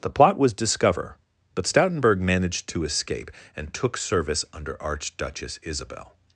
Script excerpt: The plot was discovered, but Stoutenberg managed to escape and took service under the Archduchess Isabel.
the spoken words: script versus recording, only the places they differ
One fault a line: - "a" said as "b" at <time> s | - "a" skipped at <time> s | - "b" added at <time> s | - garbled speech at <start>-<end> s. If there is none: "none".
- "discovered" said as "discover" at 0.5 s
- "the" skipped at 4.8 s